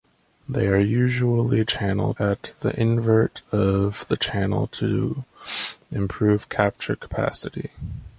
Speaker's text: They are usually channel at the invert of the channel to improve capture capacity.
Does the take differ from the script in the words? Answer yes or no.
no